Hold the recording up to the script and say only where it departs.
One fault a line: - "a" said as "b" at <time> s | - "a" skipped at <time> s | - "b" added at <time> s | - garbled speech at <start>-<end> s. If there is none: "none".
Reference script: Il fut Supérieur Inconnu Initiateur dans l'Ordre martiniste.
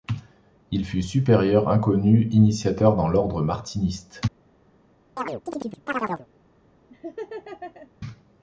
none